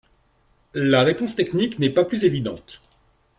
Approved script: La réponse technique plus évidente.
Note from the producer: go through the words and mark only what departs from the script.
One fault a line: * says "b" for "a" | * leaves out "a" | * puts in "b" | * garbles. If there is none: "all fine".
* puts in "n'est pas"